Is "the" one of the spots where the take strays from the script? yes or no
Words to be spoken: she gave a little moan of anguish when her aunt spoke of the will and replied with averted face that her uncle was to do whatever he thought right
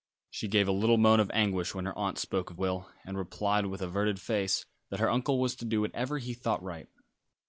yes